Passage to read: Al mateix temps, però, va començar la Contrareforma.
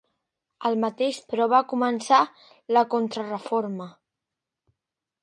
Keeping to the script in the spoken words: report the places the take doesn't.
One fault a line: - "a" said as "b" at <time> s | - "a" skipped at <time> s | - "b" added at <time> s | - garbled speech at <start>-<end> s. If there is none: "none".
- "temps" skipped at 1.2 s